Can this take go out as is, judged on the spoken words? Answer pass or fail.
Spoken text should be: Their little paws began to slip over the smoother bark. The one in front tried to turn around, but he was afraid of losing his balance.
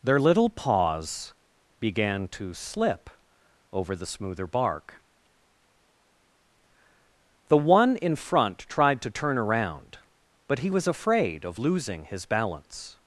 pass